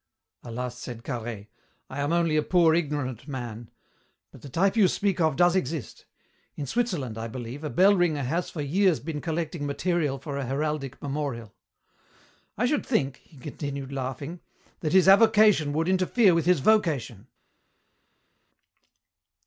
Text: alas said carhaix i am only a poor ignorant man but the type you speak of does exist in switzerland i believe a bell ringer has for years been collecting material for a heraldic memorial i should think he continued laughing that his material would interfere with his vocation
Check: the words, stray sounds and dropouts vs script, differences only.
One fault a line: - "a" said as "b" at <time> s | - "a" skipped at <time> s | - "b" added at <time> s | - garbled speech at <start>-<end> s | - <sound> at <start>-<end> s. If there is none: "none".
- "material" said as "avocation" at 15.1 s